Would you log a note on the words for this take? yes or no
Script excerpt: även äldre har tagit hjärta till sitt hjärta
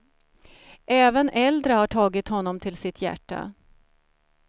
yes